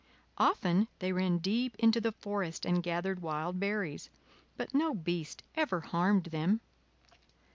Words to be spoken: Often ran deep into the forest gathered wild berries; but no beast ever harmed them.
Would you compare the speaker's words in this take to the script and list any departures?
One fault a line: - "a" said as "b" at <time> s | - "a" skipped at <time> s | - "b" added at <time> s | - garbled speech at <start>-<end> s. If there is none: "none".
- "they" added at 1.0 s
- "and" added at 2.6 s